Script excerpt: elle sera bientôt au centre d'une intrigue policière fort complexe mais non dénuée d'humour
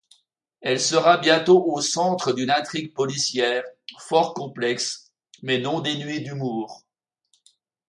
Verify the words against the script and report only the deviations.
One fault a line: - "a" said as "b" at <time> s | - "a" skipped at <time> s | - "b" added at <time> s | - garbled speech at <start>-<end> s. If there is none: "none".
none